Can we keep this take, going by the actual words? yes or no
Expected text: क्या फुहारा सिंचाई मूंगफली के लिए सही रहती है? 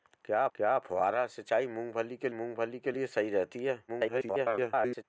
no